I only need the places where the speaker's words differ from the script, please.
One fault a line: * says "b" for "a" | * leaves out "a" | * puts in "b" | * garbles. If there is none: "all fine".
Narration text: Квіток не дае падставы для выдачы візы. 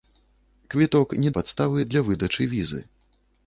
* leaves out "дае"